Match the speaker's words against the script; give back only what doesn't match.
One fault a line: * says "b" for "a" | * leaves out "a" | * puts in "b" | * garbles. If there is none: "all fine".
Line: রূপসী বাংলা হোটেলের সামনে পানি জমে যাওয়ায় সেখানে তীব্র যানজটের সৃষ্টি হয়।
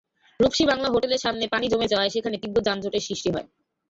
all fine